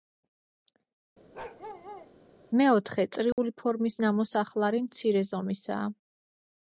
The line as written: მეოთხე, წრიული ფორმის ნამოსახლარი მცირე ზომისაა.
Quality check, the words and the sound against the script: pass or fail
fail